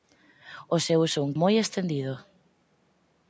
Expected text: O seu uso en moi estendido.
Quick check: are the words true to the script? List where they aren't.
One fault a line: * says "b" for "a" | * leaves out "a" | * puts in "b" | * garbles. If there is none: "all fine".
all fine